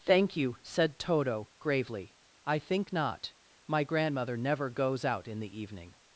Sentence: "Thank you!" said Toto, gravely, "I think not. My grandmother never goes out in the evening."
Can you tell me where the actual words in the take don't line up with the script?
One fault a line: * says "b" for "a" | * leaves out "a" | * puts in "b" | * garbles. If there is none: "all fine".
all fine